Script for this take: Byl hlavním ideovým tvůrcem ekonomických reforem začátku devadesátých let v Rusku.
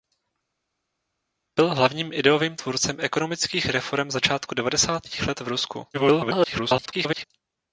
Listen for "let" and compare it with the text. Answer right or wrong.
right